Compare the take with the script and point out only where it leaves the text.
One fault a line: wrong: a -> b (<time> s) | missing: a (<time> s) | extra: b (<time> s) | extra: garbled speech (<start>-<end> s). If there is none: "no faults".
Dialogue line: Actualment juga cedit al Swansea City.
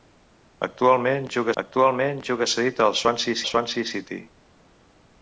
extra: actualment juga (1.6 s)
extra: Swansea (3.5 s)